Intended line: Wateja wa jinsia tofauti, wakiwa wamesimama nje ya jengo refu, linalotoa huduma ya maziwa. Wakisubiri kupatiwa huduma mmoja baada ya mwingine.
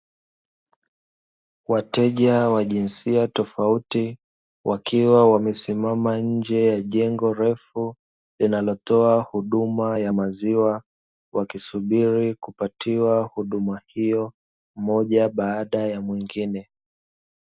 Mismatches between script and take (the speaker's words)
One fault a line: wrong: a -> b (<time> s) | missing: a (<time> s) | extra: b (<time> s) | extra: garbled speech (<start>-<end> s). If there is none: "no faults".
extra: hiyo (13.9 s)